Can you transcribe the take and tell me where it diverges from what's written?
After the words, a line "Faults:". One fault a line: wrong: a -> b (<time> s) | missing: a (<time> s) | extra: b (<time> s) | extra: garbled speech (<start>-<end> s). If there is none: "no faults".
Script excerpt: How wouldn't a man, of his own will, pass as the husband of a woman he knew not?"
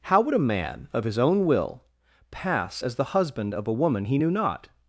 How would a man, of his own will, pass as the husband of a woman he knew not?"
Faults:
wrong: wouldn't -> would (0.2 s)